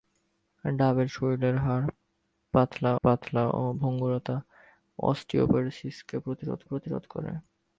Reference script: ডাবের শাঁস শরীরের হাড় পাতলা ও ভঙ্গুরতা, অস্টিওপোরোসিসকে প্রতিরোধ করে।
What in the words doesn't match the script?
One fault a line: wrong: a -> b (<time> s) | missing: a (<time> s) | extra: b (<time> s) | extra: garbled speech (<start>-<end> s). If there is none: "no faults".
missing: শাঁস (1.1 s)
extra: পাতলা (3.0 s)
extra: প্রতিরোধ (6.6 s)